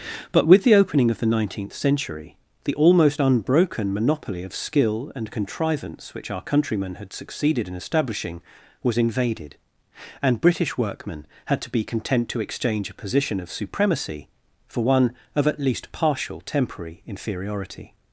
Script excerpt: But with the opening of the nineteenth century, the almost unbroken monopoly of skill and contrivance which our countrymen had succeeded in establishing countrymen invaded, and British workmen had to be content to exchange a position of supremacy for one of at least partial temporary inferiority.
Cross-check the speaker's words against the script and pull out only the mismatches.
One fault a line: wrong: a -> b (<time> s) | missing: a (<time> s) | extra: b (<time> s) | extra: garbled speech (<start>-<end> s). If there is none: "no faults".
wrong: countrymen -> was (8.8 s)